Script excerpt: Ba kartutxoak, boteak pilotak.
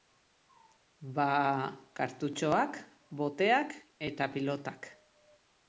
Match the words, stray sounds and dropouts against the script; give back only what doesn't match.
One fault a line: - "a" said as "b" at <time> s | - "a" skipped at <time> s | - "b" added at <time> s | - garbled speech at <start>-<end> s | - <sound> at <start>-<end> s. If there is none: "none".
- "eta" added at 4.1 s